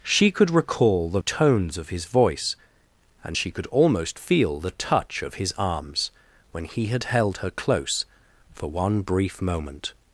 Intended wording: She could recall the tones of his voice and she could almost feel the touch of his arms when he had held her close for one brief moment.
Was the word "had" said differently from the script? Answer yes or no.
no